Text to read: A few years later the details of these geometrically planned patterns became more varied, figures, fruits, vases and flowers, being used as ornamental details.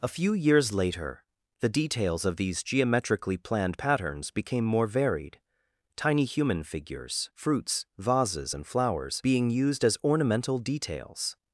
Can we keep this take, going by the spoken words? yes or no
no